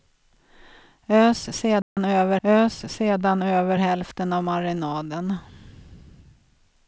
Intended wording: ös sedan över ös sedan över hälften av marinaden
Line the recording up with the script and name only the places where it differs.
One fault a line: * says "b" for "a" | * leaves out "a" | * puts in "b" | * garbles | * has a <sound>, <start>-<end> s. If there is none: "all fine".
* has a dropout, 1.8-2.0 s